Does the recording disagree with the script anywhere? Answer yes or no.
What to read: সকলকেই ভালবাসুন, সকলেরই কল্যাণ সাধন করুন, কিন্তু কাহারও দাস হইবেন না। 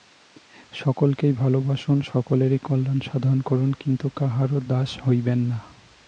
no